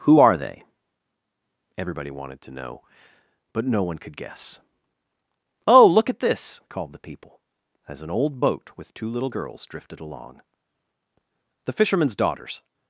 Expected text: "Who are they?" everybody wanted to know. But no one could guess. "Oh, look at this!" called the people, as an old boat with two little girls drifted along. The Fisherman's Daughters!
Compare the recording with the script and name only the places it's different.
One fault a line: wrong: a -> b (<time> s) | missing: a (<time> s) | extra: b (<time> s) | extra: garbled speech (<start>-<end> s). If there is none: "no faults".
no faults